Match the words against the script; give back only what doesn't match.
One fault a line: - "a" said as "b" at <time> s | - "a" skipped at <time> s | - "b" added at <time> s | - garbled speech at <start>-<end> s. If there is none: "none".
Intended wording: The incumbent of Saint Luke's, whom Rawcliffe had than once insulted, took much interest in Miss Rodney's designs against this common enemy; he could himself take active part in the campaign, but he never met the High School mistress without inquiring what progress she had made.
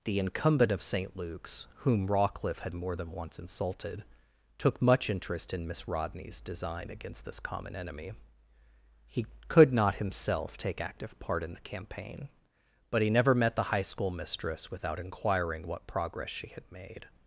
- "more" added at 2.7 s
- "designs" said as "design" at 6.4 s
- "not" added at 9.7 s